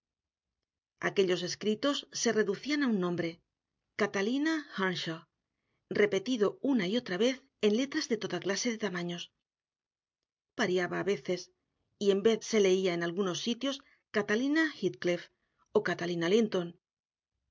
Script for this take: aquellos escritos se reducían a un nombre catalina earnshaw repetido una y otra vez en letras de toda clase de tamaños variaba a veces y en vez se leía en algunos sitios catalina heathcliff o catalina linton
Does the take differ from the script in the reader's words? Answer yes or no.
no